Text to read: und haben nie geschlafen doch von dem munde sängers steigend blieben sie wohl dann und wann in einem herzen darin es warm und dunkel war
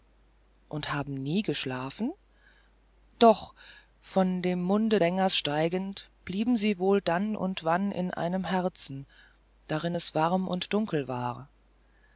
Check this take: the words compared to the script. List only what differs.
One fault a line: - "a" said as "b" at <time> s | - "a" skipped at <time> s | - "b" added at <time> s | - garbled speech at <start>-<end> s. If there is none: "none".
none